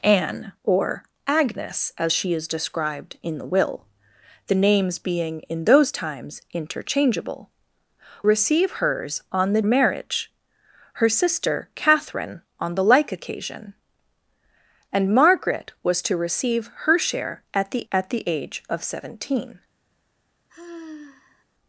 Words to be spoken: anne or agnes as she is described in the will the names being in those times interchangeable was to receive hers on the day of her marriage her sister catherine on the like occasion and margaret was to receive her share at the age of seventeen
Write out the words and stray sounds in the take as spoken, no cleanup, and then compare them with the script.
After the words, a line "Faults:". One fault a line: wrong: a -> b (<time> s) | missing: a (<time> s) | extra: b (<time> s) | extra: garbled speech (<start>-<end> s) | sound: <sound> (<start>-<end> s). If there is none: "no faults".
anne or agnes as she is described in the will the names being in those times interchangeable receive hers on the marriage her sister catherine on the like occasion and margaret was to receive her share at the at the age of seventeen
Faults:
missing: was to (7.5 s)
missing: day of her (9.6 s)
extra: at the (17.9 s)
sound: sigh (20.5-21.4 s)